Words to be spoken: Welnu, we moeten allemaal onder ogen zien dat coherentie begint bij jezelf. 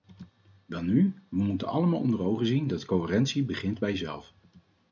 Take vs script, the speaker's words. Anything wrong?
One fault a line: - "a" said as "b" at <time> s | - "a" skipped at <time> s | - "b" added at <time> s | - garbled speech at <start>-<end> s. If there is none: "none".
none